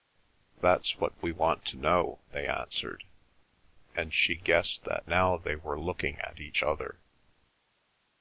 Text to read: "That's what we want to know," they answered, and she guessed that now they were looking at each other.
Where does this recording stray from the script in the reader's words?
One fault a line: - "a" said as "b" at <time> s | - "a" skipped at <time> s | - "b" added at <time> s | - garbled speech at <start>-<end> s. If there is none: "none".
none